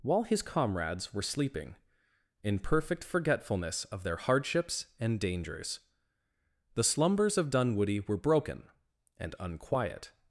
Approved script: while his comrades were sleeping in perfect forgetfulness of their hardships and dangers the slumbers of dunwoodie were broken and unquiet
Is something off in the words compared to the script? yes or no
no